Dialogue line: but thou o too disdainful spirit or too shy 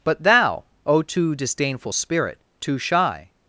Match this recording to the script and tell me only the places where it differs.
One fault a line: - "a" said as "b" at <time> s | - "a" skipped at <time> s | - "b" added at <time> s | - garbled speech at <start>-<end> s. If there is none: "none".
- "or" skipped at 2.4 s